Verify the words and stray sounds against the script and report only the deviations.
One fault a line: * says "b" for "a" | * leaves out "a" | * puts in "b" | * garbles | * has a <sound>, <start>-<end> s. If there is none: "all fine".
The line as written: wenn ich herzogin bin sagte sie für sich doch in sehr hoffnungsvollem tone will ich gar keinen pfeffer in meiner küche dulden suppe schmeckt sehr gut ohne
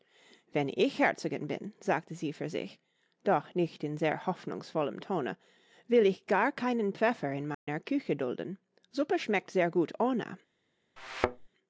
* puts in "nicht"
* has a dropout, 7.5-7.7 s
* has a thud, 11.0-11.5 s